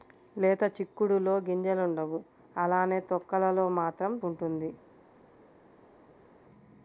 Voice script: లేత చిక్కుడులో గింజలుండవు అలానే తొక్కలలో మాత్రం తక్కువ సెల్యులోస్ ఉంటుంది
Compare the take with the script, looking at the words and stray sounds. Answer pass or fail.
fail